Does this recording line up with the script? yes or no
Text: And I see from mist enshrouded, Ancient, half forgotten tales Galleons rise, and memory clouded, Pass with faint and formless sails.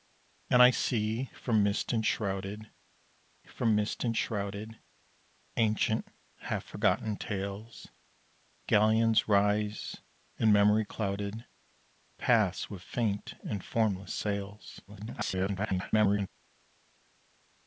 no